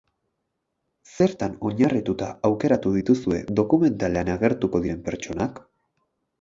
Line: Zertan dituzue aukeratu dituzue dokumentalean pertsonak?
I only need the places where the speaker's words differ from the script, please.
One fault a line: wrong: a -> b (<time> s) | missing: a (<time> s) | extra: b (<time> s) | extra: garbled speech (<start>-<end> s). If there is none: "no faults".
wrong: dituzue -> oinarrituta (1.7 s)
extra: agertuko diren (4.4 s)